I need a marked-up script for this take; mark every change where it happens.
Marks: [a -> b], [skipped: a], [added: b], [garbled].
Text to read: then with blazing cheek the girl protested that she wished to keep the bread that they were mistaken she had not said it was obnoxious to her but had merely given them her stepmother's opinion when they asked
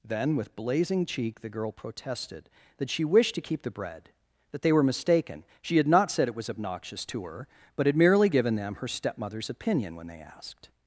then with blazing cheek the girl protested that she wished to keep the bread that they were mistaken she had not said it was obnoxious to her but had merely given them her stepmother's opinion when they asked